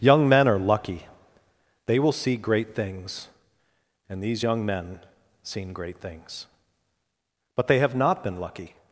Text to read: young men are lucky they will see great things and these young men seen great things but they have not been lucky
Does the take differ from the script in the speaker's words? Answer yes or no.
no